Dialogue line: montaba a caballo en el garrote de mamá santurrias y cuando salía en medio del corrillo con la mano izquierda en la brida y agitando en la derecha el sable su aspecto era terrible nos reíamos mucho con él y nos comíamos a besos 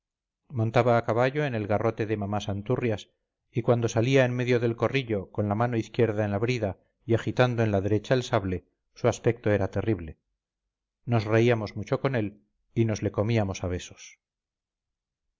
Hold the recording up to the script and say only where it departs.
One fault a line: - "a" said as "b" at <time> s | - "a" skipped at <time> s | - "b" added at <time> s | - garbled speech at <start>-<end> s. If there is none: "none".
- "le" added at 13.0 s